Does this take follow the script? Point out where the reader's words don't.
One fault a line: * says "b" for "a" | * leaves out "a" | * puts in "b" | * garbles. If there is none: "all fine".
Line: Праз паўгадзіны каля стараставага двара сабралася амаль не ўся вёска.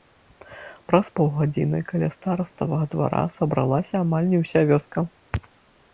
all fine